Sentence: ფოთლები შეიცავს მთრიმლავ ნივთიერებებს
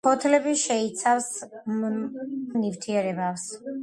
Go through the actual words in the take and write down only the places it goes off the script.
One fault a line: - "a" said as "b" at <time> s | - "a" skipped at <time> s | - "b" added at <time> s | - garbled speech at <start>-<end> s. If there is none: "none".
- "მთრიმლავ" skipped at 1.3 s